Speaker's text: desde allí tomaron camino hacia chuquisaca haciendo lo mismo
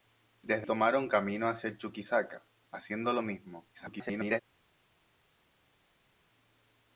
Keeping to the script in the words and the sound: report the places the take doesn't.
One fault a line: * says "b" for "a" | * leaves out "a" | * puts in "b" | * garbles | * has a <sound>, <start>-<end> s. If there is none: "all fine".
* leaves out "allí"
* garbles